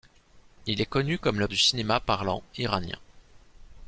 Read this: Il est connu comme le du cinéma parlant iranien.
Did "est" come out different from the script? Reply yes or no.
no